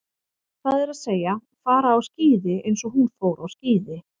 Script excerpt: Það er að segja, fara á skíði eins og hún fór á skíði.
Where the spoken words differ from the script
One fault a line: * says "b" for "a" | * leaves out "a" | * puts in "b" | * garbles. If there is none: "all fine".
all fine